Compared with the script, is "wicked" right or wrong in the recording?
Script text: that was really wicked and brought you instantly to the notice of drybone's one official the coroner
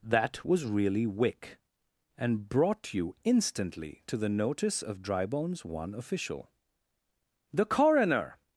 wrong